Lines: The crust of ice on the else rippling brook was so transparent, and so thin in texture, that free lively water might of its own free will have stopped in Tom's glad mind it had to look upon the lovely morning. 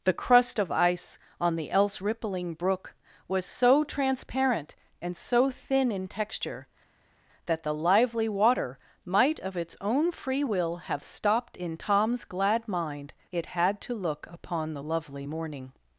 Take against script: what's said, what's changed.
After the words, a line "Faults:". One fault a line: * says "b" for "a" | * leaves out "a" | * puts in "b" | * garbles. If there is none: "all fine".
The crust of ice on the else rippling brook was so transparent, and so thin in texture, that the lively water might of its own free will have stopped in Tom's glad mind it had to look upon the lovely morning.
Faults:
* says "the" for "free"